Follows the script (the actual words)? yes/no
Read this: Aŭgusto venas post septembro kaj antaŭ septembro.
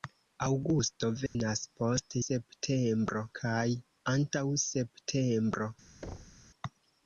yes